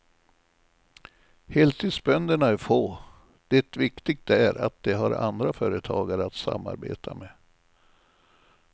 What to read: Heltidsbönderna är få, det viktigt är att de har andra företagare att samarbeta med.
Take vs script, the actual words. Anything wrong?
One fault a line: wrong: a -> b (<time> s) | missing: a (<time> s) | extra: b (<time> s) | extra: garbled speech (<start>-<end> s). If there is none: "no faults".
no faults